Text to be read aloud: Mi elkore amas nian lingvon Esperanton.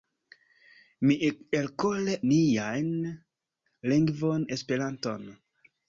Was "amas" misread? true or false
true